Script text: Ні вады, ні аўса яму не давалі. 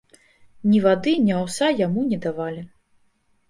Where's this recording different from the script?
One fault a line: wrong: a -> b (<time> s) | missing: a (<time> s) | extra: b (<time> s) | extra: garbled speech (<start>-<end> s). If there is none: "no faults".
no faults